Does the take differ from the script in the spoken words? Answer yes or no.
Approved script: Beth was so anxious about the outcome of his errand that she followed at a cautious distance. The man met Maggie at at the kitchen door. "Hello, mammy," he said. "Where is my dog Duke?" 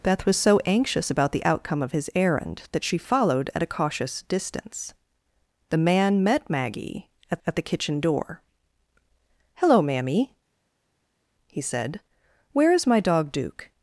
no